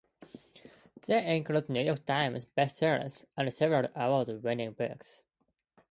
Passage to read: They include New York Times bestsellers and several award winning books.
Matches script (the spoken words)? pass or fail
pass